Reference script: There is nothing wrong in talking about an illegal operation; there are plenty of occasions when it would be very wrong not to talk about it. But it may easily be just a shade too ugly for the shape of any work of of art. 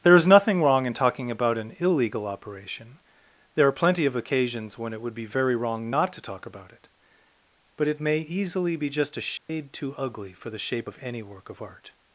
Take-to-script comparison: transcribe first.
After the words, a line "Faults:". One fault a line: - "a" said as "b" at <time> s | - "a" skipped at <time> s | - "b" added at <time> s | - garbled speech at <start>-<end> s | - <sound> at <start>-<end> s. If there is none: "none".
There is nothing wrong in talking about an illegal operation; there are plenty of occasions when it would be very wrong not to talk about it. But it may easily be just a shade too ugly for the shape of any work of art.
Faults:
- dropout at 9.4-9.5 s
- "of" skipped at 11.6 s